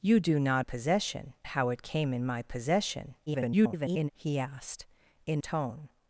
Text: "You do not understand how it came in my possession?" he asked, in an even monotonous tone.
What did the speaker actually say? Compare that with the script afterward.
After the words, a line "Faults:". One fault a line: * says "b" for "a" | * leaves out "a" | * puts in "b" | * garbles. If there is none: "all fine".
"You do not possession how it came in my possession?" [garbled] he asked, in tone.
Faults:
* says "possession" for "understand"
* garbles
* leaves out "an even monotonous"